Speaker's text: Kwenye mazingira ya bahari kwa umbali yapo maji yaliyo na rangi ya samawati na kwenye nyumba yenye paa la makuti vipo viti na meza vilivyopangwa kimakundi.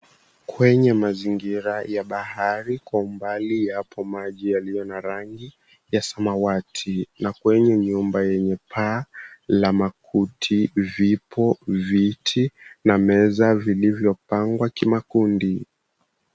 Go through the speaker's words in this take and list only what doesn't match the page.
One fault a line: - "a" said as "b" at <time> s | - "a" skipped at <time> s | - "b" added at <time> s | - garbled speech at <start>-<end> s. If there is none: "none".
none